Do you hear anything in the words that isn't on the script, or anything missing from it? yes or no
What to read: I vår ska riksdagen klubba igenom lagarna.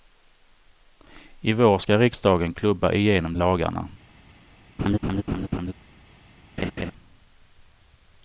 no